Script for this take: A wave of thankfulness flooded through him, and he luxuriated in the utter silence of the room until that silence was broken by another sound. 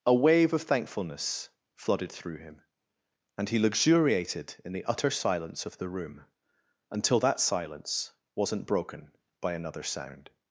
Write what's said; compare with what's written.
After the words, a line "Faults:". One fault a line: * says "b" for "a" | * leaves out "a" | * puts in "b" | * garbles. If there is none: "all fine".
A wave of thankfulness flooded through him, and he luxuriated in the utter silence of the room until that silence wasn't broken by another sound.
Faults:
* says "wasn't" for "was"